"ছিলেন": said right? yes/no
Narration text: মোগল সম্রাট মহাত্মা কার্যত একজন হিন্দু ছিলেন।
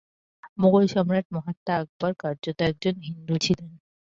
yes